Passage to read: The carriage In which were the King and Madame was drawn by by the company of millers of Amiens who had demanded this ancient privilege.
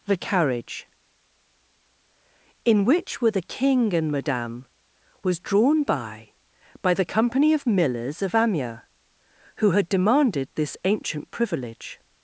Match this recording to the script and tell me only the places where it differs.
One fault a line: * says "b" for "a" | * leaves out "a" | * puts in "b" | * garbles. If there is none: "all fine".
all fine